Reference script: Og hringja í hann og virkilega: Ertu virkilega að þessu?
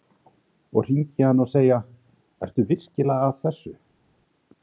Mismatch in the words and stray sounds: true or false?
true